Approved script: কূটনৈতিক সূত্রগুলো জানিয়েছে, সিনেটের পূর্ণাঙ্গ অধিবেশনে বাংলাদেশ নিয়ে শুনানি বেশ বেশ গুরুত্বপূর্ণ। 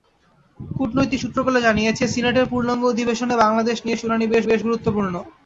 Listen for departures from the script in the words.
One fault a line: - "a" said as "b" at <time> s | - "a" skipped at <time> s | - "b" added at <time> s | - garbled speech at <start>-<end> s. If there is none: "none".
none